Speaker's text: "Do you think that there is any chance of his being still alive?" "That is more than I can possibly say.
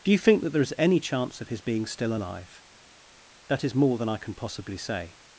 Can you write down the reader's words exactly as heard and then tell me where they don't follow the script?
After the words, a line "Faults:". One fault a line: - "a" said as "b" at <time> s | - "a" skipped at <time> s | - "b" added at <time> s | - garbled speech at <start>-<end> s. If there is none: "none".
"Do you think that there is any chance of his being still alive?" "That is more than I can possibly say.
Faults:
none